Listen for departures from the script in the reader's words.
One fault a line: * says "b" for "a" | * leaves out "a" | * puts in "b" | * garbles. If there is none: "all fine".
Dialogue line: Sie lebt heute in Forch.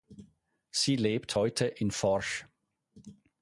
all fine